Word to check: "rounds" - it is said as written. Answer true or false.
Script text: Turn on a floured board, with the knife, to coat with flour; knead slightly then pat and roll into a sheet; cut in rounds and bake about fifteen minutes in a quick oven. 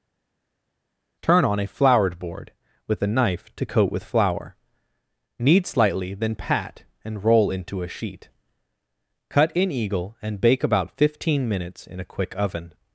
false